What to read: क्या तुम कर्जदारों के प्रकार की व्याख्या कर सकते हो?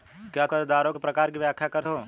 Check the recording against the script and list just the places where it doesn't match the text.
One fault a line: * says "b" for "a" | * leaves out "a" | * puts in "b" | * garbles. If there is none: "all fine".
* leaves out "तुम"
* leaves out "सकते"